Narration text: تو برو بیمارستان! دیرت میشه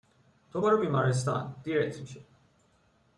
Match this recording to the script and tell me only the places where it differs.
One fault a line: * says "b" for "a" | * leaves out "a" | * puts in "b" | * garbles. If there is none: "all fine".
all fine